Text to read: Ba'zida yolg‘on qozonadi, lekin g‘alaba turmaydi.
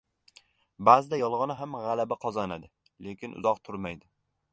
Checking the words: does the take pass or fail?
fail